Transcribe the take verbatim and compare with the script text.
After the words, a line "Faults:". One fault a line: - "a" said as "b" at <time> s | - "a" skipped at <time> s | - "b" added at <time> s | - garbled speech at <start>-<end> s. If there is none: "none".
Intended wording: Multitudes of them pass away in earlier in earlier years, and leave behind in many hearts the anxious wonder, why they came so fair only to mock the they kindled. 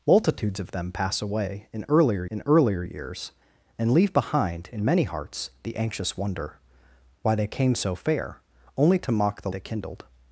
Multitudes of them pass away in earlier in earlier years, and leave behind in many hearts the anxious wonder, why they came so fair only to mock the they kindled.
Faults:
none